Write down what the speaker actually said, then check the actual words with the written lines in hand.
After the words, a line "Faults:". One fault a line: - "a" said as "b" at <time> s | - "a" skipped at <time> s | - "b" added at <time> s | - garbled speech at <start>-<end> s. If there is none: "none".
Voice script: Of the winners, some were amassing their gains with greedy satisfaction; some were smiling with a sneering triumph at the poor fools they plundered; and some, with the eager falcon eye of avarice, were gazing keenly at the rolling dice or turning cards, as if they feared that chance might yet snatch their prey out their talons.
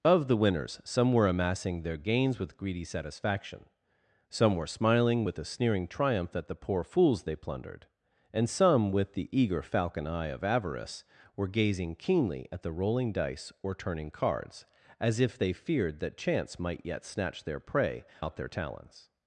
Of the winners, some were amassing their gains with greedy satisfaction; some were smiling with a sneering triumph at the poor fools they plundered; and some, with the eager falcon eye of avarice, were gazing keenly at the rolling dice or turning cards, as if they feared that chance might yet snatch their prey out their talons.
Faults:
none